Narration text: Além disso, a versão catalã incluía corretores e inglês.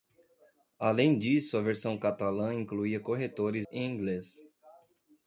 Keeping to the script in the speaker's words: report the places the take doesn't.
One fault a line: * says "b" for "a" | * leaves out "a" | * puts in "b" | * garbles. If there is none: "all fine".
all fine